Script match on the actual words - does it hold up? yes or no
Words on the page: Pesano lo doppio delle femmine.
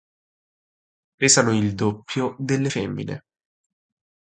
no